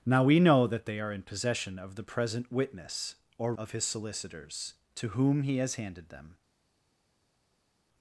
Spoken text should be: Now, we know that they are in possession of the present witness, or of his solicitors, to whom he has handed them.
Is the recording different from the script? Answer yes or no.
no